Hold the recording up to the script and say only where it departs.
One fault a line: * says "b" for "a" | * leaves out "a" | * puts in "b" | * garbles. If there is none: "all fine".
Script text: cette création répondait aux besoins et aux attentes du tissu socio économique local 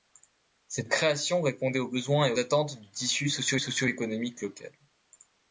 * leaves out "aux"
* puts in "socio"